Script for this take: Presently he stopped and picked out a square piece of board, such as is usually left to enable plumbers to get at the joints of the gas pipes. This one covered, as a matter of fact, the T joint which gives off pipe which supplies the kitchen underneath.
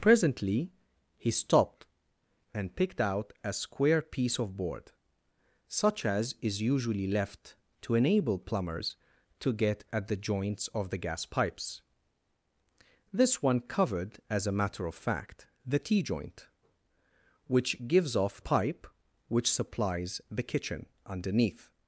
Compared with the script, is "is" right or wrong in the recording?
right